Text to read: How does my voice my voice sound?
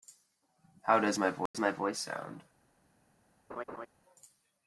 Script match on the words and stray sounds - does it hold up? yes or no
no